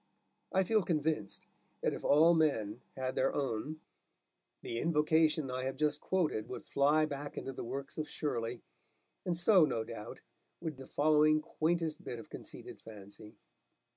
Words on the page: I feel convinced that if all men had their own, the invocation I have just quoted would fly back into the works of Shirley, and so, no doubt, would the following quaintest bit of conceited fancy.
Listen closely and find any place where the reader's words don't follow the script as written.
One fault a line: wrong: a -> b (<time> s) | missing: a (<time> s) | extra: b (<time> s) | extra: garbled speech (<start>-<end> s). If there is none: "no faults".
no faults